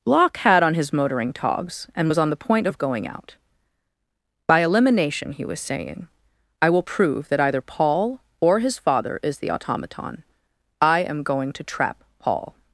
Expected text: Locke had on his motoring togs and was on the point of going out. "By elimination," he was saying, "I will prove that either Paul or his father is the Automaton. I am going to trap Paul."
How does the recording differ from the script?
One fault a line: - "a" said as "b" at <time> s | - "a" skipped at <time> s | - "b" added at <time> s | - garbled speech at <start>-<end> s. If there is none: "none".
none